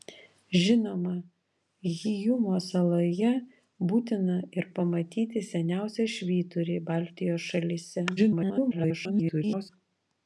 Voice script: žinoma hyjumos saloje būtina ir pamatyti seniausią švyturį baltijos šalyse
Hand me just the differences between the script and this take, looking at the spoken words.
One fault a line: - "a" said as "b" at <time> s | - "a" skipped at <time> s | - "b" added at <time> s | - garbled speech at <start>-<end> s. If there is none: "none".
- garbled speech at 8.2-9.7 s